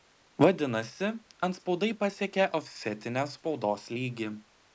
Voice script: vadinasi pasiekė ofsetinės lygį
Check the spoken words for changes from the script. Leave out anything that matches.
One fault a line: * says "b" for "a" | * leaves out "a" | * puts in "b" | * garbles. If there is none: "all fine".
* puts in "antspaudai"
* puts in "spaudos"